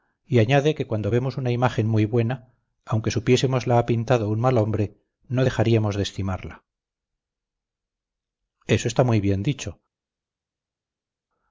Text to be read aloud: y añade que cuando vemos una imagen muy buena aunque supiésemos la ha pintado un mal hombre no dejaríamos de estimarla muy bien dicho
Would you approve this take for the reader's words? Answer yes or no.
no